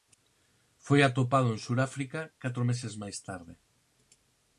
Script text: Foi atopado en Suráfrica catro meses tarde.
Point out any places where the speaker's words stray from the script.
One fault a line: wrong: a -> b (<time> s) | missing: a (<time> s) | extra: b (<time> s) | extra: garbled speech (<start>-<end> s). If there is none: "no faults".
extra: máis (3.0 s)